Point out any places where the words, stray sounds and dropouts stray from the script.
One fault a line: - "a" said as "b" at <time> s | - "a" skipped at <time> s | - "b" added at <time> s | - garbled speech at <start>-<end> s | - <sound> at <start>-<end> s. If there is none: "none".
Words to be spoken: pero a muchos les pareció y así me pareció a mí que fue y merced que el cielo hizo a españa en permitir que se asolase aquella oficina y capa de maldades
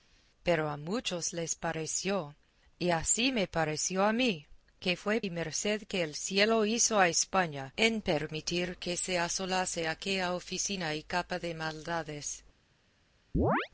- chirp at 13.3-13.7 s